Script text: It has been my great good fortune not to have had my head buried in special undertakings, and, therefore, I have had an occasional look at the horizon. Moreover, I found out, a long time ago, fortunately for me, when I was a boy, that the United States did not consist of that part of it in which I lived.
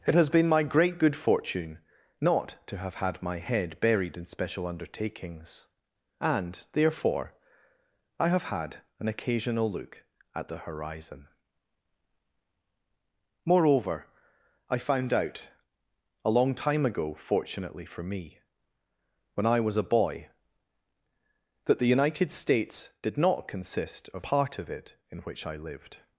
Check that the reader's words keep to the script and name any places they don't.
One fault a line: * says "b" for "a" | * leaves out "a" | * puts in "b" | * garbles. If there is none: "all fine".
* leaves out "that"